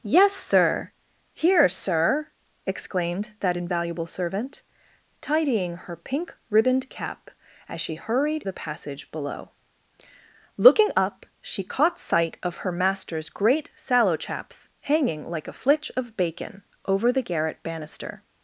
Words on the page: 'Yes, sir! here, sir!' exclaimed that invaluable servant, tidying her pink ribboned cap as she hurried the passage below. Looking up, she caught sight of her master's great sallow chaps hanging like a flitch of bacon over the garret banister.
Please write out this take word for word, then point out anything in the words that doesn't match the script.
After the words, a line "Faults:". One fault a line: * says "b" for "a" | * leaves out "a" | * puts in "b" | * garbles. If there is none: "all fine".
'Yes, sir! here, sir!' exclaimed that invaluable servant, tidying her pink ribboned cap as she hurried the passage below. Looking up, she caught sight of her master's great sallow chaps hanging like a flitch of bacon over the garret banister.
Faults:
all fine